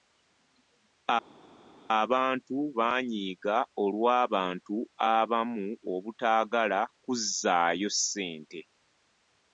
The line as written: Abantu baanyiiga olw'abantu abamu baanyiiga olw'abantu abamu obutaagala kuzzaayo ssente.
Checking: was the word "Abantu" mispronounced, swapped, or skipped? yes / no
no